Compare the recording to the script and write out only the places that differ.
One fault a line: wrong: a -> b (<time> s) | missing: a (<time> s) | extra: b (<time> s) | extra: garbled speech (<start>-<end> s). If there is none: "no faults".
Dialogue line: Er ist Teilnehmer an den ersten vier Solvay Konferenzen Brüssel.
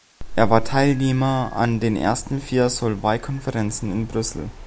wrong: ist -> war (0.5 s)
extra: in (3.9 s)